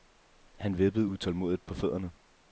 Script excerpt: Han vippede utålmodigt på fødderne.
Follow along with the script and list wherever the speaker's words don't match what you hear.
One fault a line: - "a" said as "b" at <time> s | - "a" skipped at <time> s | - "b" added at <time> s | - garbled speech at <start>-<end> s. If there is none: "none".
none